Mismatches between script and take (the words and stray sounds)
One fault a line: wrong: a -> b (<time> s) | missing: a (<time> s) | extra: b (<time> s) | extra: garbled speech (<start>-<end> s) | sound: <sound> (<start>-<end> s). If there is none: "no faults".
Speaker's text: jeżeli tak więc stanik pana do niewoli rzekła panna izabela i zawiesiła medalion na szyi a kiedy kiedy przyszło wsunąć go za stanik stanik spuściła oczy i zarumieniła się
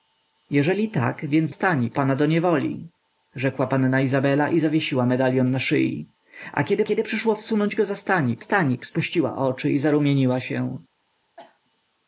sound: cough (11.4-11.6 s)